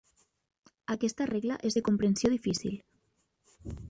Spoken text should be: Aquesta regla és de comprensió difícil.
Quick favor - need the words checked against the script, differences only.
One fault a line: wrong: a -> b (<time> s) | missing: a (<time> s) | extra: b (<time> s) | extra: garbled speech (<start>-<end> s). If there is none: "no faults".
no faults